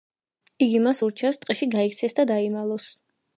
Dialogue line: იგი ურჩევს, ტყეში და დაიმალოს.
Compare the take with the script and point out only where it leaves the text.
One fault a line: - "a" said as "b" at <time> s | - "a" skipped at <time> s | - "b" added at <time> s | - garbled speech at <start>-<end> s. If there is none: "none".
- "მას" added at 0.8 s
- "გაიქცეს" added at 1.7 s